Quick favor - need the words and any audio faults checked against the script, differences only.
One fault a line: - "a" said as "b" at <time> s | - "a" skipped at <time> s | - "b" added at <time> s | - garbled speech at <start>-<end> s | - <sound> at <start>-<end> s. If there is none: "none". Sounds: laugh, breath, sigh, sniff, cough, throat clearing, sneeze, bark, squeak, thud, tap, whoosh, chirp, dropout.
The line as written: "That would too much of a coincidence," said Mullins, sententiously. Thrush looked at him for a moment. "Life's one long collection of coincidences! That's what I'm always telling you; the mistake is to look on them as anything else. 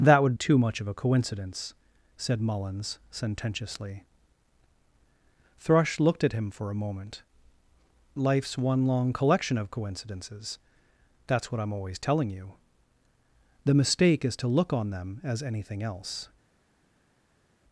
none